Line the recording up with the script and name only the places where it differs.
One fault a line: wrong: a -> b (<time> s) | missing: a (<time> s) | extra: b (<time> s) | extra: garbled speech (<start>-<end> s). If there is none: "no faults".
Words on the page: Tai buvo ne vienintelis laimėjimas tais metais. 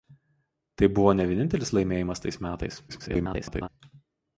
extra: garbled speech (2.9-3.7 s)